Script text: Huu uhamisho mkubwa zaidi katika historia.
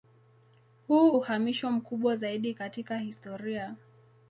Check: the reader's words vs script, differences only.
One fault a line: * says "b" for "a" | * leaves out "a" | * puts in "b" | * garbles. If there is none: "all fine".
all fine